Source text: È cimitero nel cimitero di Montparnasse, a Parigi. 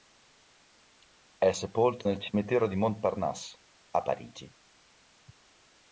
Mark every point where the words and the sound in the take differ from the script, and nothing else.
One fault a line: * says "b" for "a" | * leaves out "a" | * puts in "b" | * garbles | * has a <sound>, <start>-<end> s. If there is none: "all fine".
* says "sepolto" for "cimitero"